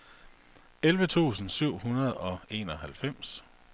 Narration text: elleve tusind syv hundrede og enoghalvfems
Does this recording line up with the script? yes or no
yes